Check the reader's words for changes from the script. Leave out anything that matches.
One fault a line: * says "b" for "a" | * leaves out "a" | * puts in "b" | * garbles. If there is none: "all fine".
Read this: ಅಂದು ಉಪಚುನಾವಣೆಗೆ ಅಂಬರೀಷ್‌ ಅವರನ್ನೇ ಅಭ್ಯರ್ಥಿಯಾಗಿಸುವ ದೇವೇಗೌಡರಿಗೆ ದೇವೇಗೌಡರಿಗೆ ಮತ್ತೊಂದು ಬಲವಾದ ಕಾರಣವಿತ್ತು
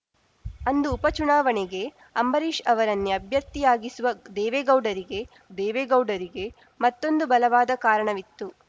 all fine